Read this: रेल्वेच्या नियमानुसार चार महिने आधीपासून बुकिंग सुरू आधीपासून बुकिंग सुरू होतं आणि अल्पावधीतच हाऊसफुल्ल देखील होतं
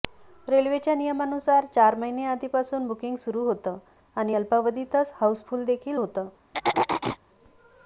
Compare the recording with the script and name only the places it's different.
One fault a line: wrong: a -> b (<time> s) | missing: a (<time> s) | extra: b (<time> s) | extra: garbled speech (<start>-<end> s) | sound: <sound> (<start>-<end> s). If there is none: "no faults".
missing: आधीपासून बुकिंग सुरू (3.4 s)
sound: throat clearing (6.5-7.2 s)